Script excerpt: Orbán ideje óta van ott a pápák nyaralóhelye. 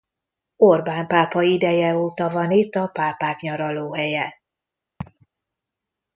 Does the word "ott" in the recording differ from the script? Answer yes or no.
yes